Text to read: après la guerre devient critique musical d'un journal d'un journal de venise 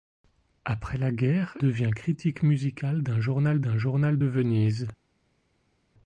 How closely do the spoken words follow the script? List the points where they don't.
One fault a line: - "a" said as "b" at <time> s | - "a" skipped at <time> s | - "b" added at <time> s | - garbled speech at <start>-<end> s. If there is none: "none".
none